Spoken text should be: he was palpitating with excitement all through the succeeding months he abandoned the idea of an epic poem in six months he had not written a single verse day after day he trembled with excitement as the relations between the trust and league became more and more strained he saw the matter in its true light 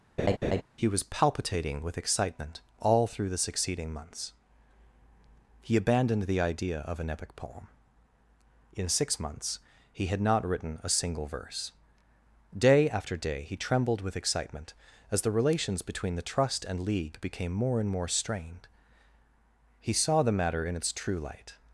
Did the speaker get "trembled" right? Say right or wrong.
right